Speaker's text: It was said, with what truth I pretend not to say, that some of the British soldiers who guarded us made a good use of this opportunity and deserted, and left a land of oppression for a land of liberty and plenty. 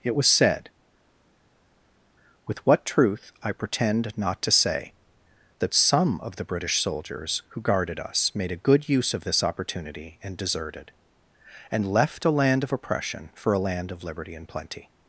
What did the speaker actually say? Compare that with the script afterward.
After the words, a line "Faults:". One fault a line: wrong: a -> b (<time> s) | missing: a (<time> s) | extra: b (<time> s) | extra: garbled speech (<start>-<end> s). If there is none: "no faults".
It was said, with what truth I pretend not to say, that some of the British soldiers who guarded us made a good use of this opportunity and deserted, and left a land of oppression for a land of liberty and plenty.
Faults:
no faults